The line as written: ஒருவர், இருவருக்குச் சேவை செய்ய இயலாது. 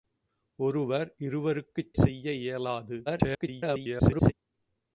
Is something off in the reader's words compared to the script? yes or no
yes